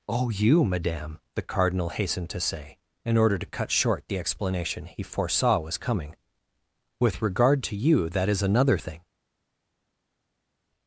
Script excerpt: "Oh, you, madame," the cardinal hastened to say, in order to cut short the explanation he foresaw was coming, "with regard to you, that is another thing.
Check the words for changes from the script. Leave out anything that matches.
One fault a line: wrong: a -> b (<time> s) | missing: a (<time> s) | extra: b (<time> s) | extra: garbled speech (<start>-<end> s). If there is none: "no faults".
no faults